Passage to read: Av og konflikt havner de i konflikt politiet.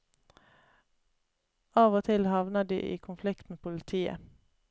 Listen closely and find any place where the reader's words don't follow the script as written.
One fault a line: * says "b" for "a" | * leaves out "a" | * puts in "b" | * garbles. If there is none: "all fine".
* says "til" for "konflikt"
* puts in "med"